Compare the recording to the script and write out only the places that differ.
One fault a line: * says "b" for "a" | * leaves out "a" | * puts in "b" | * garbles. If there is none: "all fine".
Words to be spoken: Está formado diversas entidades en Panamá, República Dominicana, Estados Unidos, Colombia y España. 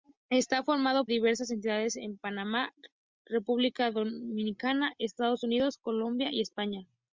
all fine